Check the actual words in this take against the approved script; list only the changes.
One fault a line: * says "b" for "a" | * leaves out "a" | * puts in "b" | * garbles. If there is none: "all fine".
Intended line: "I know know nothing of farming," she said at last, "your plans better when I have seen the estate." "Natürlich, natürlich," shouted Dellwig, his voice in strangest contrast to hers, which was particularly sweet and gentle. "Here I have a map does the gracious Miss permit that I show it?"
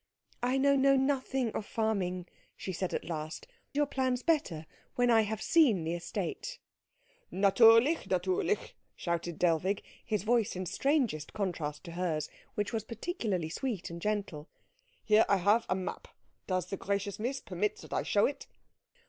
all fine